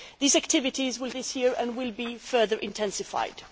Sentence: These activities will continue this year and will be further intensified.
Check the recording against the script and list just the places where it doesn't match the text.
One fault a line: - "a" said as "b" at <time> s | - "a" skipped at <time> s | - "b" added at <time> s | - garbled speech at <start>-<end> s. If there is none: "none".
- "continue" skipped at 1.1 s